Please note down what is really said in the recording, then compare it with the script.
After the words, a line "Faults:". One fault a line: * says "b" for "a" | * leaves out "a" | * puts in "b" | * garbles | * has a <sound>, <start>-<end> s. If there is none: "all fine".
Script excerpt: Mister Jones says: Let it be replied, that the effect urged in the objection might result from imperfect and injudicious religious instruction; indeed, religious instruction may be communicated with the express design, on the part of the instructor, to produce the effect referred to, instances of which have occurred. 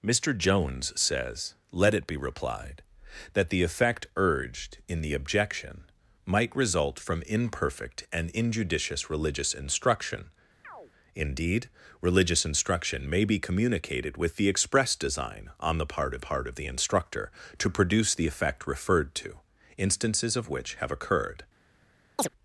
Mister Jones says: Let it be replied, that the effect urged in the objection might result from imperfect and injudicious religious instruction; indeed, religious instruction may be communicated with the express design, on the part of part of the instructor, to produce the effect referred to, instances of which have occurred.
Faults:
* has a chirp, 10.6-10.9 s
* puts in "part of"
* has a chirp, 22.2-22.3 s